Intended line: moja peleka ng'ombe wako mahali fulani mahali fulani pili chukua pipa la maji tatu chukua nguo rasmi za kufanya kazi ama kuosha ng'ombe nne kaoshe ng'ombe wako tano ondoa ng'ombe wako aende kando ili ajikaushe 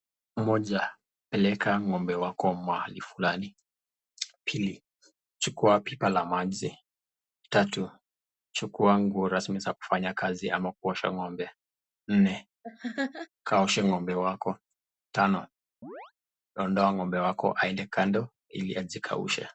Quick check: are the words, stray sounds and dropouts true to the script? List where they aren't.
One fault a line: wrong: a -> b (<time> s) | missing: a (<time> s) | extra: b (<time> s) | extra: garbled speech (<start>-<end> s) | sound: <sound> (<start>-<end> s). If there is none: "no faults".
missing: mahali fulani (3.5 s)
sound: laugh (12.6-13.3 s)
sound: chirp (15.8-16.1 s)